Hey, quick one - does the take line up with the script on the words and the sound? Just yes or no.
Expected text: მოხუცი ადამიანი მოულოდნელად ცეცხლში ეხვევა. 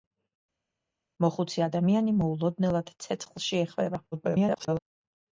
no